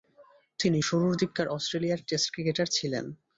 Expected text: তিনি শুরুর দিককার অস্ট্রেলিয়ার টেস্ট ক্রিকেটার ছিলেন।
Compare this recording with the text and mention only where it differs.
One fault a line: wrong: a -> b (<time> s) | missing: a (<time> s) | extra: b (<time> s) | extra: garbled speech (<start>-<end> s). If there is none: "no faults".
no faults